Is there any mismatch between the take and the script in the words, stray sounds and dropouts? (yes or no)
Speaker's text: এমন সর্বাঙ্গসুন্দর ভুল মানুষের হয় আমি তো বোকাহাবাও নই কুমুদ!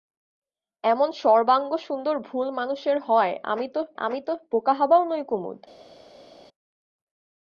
yes